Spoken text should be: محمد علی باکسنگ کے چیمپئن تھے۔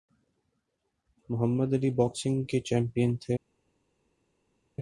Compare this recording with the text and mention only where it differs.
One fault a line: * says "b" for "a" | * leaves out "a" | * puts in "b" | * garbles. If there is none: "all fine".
all fine